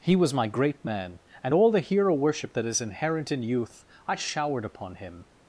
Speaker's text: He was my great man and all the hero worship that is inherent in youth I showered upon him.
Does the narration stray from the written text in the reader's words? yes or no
no